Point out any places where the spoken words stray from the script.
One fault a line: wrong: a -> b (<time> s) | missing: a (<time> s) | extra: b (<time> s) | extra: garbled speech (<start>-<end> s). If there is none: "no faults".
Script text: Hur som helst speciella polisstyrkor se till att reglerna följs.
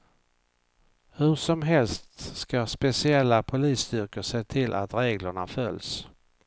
extra: ska (2.4 s)